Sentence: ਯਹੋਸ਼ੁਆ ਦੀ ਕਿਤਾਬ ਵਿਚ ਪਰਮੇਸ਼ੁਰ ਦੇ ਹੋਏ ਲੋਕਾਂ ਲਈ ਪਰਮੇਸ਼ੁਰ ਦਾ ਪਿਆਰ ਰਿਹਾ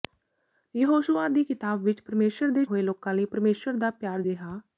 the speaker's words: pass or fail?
pass